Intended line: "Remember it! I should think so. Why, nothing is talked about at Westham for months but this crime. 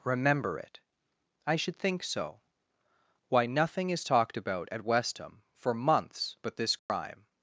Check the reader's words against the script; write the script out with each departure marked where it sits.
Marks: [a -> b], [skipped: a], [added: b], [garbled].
"Remember it! I should think so. Why, nothing is talked about at Westham for months but this crime.